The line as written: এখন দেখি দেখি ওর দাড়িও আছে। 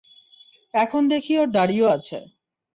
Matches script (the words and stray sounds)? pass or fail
fail